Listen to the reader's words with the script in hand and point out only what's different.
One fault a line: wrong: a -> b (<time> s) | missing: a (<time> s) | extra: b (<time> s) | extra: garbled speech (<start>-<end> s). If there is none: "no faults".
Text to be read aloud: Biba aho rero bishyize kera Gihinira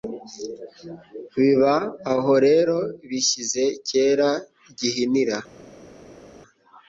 no faults